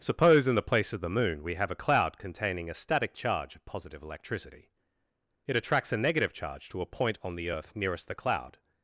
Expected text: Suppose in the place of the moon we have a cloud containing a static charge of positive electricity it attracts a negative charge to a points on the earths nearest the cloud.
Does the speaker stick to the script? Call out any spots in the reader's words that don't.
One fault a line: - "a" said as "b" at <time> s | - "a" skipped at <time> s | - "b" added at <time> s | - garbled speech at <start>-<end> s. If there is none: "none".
- "points" said as "point" at 6.9 s
- "earths" said as "earth" at 7.5 s